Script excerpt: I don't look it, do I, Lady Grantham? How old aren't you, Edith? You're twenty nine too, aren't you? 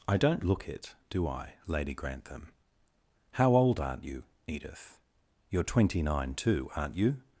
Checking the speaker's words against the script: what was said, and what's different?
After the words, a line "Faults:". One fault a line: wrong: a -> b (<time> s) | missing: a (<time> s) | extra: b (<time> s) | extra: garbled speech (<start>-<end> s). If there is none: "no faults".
I don't look it, do I, Lady Grantham? How old aren't you, Edith? You're twenty nine too, aren't you?
Faults:
no faults